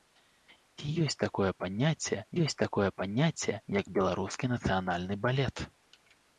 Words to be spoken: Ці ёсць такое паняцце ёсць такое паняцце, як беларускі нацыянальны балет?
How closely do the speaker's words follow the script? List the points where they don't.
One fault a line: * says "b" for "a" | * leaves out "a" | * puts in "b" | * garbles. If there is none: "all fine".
all fine